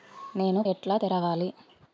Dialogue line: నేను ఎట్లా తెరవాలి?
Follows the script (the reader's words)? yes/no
yes